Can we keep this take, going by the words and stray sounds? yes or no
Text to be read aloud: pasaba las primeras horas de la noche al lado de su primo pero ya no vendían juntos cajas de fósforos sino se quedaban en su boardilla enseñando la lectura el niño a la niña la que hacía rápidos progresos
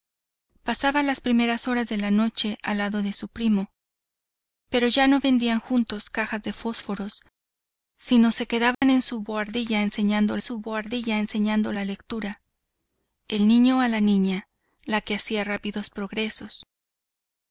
no